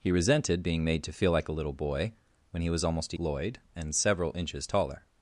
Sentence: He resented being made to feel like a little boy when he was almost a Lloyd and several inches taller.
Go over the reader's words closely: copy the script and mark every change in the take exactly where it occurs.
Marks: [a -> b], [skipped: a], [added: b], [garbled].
He resented being made to feel like a little boy when he was almost a Lloyd and several inches taller.